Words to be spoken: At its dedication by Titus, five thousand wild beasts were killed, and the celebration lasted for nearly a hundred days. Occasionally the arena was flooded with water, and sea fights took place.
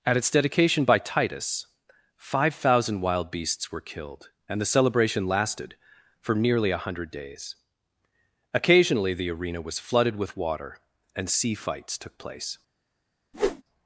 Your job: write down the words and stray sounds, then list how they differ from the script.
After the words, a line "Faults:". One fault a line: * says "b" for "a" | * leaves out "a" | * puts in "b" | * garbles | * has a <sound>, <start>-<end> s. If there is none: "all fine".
At its dedication by Titus, five thousand wild beasts were killed, and the celebration lasted for nearly a hundred days. Occasionally the arena was flooded with water, and sea fights took place.
Faults:
* has a whoosh, 13.3-13.6 s